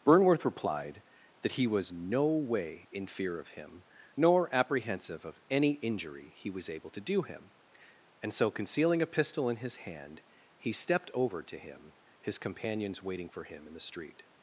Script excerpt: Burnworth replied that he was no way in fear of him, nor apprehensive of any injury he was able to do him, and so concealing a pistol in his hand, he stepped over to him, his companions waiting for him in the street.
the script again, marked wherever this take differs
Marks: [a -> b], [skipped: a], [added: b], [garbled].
Burnworth replied that he was no way in fear of him, nor apprehensive of any injury he was able to do him, and so concealing a pistol in his hand, he stepped over to him, his companions waiting for him in the street.